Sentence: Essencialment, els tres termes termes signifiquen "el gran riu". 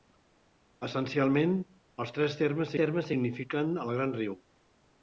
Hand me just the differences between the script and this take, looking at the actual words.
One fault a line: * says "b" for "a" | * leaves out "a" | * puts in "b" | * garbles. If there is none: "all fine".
all fine